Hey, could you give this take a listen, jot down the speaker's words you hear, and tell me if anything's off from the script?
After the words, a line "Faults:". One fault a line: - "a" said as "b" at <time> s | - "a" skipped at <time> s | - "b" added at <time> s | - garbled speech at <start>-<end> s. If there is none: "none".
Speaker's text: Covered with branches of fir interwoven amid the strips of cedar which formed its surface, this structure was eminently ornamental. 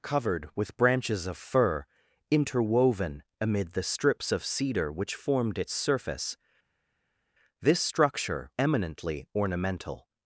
Covered with branches of fir interwoven amid the strips of cedar which formed its surface, this structure eminently ornamental.
Faults:
- "was" skipped at 8.5 s